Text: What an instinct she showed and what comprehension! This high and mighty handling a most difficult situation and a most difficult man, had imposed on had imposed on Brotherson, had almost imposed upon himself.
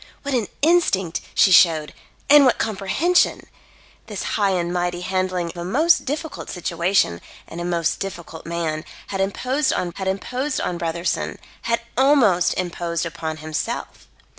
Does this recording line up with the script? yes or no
yes